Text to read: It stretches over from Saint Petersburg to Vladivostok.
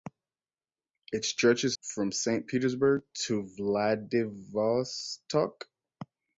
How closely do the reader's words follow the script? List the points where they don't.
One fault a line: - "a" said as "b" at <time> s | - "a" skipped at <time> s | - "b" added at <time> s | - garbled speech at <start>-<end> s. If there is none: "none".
- "over" skipped at 1.8 s